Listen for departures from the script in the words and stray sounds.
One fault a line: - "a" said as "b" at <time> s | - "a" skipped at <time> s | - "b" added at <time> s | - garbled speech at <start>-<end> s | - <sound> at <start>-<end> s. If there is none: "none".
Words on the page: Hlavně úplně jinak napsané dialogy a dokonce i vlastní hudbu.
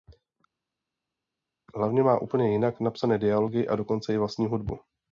- "má" added at 2.0 s